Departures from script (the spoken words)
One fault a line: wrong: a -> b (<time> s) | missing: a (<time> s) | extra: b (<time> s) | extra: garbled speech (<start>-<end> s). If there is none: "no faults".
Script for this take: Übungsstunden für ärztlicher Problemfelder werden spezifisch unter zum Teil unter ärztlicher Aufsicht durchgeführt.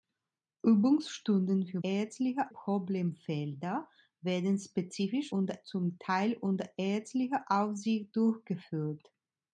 no faults